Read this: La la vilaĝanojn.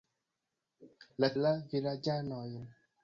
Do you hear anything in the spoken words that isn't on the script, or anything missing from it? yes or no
no